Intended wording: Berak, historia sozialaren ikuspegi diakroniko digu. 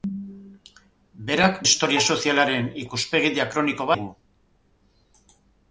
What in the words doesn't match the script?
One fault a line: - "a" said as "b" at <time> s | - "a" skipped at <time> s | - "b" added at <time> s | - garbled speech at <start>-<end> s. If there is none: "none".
none